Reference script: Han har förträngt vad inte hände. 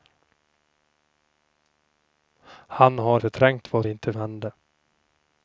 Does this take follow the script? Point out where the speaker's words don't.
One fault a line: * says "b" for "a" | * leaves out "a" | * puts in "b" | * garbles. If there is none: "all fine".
all fine